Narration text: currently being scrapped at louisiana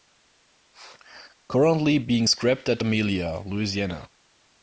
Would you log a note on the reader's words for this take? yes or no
yes